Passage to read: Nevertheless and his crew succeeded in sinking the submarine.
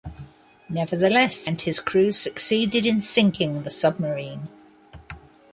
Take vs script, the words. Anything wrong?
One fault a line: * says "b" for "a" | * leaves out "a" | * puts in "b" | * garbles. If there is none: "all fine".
all fine